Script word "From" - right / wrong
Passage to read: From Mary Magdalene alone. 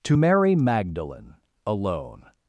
wrong